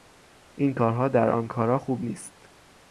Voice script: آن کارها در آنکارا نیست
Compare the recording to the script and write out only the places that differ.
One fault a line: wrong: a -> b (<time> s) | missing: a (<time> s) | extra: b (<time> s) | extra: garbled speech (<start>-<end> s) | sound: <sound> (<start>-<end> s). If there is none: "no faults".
wrong: آن -> این (0.6 s)
extra: خوب (1.8 s)